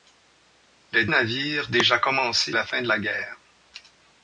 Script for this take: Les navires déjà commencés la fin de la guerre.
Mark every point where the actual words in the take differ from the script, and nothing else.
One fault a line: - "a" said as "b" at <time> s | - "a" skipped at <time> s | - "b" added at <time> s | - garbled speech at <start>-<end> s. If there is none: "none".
none